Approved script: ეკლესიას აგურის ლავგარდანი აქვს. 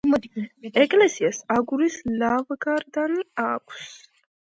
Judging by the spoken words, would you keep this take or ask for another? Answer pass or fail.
pass